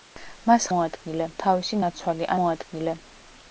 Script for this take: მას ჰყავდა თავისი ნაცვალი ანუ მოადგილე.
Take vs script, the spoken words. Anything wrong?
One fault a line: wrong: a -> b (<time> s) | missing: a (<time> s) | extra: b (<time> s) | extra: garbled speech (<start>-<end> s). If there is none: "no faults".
wrong: ჰყავდა -> მოადგილე (0.7 s)
missing: ანუ (2.3 s)